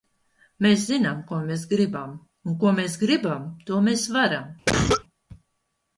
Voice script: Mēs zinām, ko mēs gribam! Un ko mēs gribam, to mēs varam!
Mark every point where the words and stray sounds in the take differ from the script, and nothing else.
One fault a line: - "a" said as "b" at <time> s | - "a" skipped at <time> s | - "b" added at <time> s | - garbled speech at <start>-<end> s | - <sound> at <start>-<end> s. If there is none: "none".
- cough at 4.7-5.0 s